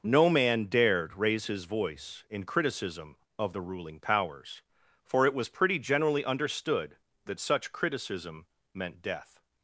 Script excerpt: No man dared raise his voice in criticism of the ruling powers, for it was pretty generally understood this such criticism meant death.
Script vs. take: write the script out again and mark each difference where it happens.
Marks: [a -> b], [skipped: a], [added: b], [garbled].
No man dared raise his voice in criticism of the ruling powers, for it was pretty generally understood [this -> that] such criticism meant death.